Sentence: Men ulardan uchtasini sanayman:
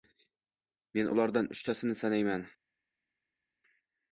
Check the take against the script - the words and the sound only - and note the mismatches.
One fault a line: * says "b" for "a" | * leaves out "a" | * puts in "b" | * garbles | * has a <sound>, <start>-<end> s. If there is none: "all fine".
all fine